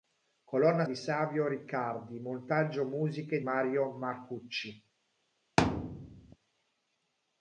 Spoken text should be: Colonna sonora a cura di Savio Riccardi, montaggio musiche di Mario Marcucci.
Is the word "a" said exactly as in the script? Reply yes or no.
no